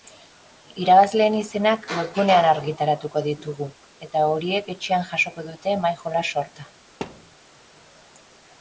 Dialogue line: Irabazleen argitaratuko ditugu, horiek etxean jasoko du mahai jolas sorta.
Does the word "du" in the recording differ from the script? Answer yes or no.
yes